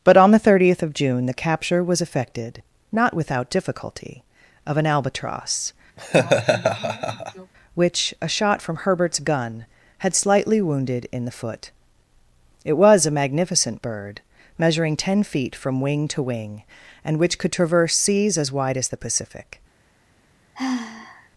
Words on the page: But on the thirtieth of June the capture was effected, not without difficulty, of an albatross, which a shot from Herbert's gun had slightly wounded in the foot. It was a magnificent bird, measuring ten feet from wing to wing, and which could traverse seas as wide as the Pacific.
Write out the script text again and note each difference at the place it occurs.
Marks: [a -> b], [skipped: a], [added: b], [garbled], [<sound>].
But on the thirtieth of June the capture was effected, not without difficulty, of an albatross, [laugh] which a shot from Herbert's gun had slightly wounded in the foot. It was a magnificent bird, measuring ten feet from wing to wing, and which could traverse seas as wide as the Pacific. [sigh]